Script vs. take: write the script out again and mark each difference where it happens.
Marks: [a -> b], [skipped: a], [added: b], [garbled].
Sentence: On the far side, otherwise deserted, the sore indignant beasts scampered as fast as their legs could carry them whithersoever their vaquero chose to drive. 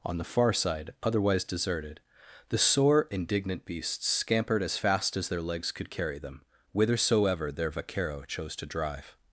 On the far side, otherwise deserted, the sore indignant beasts scampered as fast as their legs could carry them whithersoever their vaquero chose to drive.